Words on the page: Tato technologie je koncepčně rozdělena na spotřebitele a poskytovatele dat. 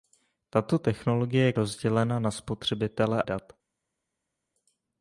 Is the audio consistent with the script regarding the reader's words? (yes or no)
no